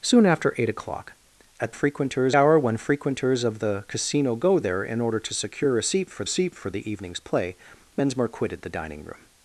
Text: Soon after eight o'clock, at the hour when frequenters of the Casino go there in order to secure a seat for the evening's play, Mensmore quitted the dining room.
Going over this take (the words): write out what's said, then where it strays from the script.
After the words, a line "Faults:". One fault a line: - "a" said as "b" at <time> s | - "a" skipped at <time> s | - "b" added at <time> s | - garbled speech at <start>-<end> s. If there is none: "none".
Soon after eight o'clock, at frequenters hour when frequenters of the Casino go there in order to secure a seat for seat for the evening's play, Mensmore quitted the dining room.
Faults:
- "the" said as "frequenters" at 1.7 s
- "seat for" added at 6.3 s